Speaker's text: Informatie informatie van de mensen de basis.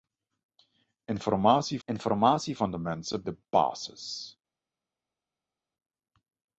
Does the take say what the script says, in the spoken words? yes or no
yes